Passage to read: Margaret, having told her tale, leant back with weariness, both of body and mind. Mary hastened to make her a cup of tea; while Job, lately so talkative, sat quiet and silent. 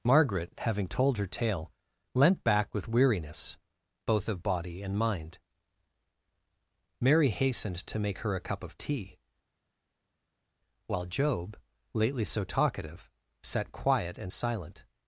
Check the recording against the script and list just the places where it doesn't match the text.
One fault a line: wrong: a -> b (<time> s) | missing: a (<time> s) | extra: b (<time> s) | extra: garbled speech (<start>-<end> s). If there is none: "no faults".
no faults